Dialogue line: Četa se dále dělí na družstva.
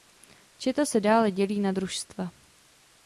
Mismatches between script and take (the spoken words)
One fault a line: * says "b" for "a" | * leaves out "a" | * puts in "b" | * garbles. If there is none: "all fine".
all fine